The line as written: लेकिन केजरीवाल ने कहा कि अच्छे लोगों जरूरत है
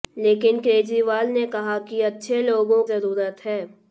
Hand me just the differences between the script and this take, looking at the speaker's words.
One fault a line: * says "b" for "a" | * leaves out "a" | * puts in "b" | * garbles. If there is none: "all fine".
all fine